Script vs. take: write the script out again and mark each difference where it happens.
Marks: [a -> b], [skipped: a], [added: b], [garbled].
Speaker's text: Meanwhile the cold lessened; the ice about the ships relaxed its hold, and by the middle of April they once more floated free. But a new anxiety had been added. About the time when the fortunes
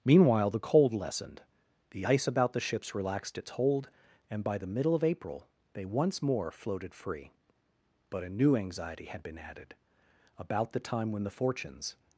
Meanwhile the cold lessened; the ice about the ships relaxed its hold, and by the middle of April they once more floated free. But a new anxiety had been added. About the time when the fortunes